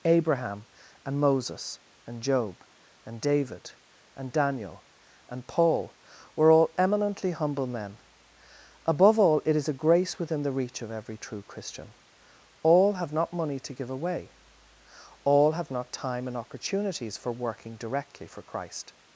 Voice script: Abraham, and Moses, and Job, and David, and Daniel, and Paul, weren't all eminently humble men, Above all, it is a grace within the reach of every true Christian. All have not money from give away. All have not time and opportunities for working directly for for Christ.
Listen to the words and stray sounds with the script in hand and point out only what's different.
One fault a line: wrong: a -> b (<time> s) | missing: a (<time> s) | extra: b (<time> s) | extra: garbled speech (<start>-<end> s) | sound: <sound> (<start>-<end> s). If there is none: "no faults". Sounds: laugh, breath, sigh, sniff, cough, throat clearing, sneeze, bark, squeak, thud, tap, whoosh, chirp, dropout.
wrong: weren't -> were (6.3 s)
wrong: from -> to (13.6 s)
missing: for (18.4 s)